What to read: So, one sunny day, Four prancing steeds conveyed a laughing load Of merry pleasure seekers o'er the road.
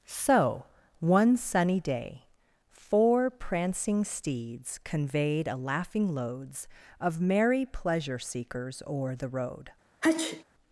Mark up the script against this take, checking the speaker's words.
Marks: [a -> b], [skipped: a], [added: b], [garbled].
So, one sunny day, Four prancing steeds conveyed a laughing [load -> loads] Of merry pleasure seekers o'er the road.